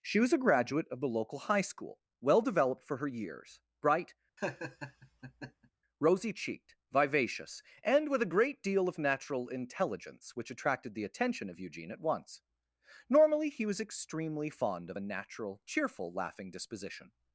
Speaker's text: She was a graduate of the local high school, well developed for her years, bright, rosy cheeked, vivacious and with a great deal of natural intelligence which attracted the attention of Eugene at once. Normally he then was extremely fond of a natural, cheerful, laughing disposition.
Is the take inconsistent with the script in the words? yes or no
yes